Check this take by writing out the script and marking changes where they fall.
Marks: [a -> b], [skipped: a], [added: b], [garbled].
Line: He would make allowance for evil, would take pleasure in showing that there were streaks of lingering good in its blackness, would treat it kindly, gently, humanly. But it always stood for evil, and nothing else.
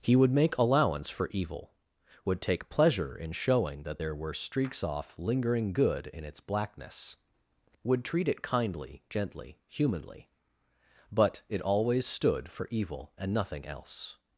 He would make allowance for evil, would take pleasure in showing that there were streaks [of -> off] lingering good in its blackness, would treat it kindly, gently, humanly. But it always stood for evil, and nothing else.